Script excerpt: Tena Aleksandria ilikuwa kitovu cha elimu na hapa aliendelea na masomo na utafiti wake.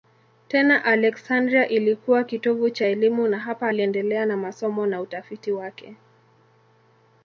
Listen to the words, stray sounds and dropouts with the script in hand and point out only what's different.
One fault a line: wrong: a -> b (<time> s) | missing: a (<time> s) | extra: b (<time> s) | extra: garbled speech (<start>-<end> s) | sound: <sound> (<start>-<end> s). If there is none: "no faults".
no faults